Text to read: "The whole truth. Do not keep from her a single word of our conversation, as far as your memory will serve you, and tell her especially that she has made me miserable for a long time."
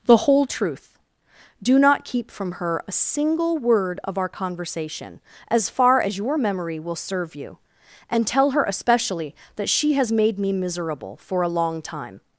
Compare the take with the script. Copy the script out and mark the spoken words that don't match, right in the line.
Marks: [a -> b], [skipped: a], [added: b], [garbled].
"The whole truth. Do not keep from her a single word of our conversation, as far as your memory will serve you, and tell her especially that she has made me miserable for a long time."